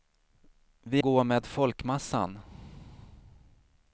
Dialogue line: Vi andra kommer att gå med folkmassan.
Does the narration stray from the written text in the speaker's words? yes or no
yes